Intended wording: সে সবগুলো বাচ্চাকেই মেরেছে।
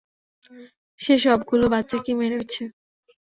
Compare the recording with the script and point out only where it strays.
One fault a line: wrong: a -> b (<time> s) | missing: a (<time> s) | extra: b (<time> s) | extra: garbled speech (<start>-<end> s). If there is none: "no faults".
no faults